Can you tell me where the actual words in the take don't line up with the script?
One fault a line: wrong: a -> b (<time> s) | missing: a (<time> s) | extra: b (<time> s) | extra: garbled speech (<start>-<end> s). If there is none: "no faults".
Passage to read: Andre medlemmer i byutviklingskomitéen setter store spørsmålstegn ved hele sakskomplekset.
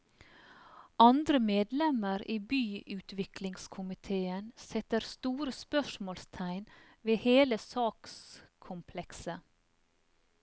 no faults